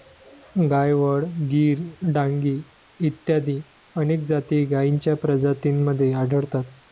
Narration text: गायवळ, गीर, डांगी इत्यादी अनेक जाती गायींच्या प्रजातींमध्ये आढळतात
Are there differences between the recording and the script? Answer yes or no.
no